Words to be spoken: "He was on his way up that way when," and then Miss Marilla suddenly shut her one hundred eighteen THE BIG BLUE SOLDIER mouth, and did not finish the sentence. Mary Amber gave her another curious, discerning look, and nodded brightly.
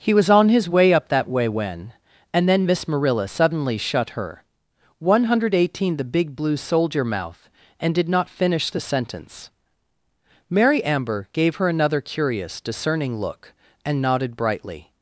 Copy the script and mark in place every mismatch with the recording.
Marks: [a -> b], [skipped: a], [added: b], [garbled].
"He was on his way up that way when," and then Miss Marilla suddenly shut her one hundred eighteen THE BIG BLUE SOLDIER mouth, and did not finish the sentence. Mary Amber gave her another curious, discerning look, and nodded brightly.